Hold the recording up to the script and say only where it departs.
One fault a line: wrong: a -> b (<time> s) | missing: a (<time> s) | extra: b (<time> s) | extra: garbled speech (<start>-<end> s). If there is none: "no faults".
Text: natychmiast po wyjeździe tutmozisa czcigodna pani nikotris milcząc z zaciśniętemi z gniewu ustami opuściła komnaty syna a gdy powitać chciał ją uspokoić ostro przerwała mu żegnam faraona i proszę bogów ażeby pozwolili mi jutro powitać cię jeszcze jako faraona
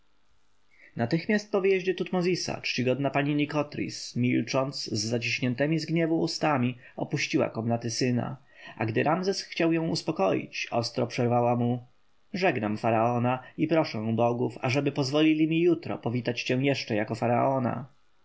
wrong: powitać -> ramzes (9.0 s)